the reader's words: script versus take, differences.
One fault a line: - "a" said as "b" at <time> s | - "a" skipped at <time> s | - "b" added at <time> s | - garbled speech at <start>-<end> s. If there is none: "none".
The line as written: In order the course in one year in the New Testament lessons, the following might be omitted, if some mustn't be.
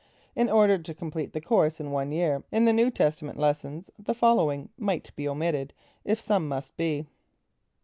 - "to complete" added at 0.8 s
- "mustn't" said as "must" at 6.5 s